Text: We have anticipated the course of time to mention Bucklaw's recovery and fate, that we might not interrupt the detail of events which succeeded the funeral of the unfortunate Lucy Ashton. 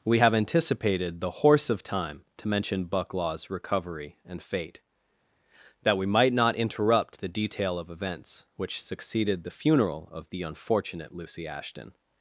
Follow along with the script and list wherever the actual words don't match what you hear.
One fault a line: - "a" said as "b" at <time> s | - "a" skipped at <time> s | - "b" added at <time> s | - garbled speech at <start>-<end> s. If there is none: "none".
- "course" said as "horse" at 1.3 s